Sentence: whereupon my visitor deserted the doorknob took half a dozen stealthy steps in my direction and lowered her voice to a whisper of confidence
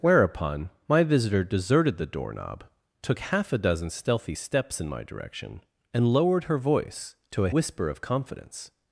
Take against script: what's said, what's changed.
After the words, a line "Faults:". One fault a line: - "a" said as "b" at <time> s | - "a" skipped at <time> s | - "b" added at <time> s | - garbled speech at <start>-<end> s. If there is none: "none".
whereupon my visitor deserted the doorknob took half a dozen stealthy steps in my direction and lowered her voice to a whisper of confidence
Faults:
none